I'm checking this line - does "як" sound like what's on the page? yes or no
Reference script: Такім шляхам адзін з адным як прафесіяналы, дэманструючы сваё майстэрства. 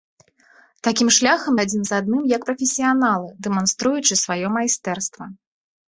yes